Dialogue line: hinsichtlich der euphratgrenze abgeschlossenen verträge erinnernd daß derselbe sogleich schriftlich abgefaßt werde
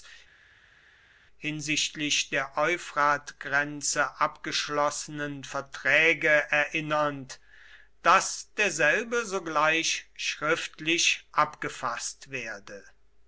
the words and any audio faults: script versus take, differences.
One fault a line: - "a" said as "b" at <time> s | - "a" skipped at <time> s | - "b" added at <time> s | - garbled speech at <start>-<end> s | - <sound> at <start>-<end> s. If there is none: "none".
none